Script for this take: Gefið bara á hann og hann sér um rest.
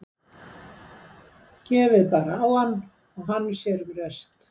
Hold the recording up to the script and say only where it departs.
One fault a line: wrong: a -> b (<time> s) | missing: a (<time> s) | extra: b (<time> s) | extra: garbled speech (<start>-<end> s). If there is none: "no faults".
no faults